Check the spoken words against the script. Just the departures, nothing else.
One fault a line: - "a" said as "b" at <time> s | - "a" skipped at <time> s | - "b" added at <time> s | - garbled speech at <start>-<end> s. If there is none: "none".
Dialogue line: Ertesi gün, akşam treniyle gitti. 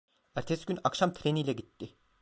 none